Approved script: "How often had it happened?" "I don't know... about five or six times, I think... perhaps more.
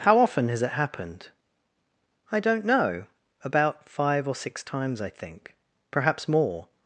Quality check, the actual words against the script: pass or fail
fail